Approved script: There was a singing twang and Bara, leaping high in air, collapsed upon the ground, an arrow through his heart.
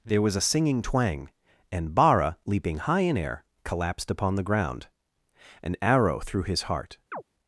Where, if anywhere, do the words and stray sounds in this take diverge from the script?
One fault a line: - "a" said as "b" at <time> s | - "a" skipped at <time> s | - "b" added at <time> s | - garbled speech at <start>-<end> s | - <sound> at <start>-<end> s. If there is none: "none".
- chirp at 7.1-7.2 s